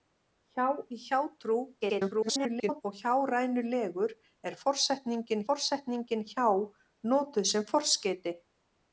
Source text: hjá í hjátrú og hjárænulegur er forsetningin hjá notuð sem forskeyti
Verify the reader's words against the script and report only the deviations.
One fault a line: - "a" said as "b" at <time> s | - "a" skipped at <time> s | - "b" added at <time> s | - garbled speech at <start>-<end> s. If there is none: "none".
- garbled speech at 1.8-2.8 s
- "forsetningin" added at 5.5 s